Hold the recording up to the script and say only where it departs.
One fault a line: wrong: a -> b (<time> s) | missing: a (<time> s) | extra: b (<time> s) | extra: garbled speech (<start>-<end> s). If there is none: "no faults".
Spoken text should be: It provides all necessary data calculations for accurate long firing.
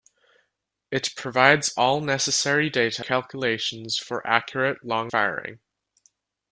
no faults